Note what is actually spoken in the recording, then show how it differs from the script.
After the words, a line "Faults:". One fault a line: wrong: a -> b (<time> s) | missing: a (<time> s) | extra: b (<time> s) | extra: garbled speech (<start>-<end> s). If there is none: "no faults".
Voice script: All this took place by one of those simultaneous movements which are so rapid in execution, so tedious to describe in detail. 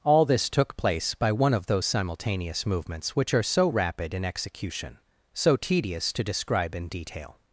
All this took place by one of those simultaneous movements which are so rapid in execution, so tedious to describe in detail.
Faults:
no faults